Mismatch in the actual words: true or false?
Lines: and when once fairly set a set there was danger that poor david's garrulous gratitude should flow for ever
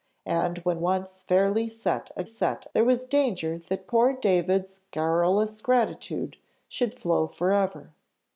false